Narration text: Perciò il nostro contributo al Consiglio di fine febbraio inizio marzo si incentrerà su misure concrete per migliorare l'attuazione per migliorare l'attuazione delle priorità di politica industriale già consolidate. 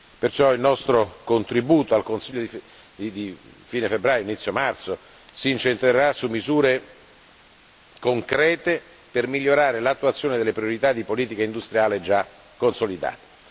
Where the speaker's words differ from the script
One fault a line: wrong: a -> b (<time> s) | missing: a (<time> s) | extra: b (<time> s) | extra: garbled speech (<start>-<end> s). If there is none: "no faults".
missing: per migliorare l'attuazione (10.4 s)